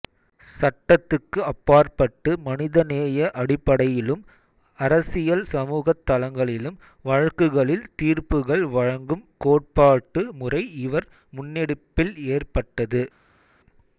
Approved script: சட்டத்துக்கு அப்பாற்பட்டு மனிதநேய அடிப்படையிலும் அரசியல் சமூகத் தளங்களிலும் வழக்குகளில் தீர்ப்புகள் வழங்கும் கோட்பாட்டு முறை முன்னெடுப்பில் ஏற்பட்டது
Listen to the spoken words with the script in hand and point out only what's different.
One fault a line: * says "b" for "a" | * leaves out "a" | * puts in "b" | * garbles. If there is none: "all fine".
* puts in "இவர்"